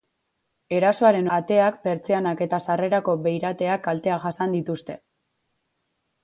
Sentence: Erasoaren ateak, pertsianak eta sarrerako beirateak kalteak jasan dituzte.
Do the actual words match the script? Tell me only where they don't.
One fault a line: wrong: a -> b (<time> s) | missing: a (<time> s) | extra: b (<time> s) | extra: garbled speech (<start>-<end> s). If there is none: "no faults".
no faults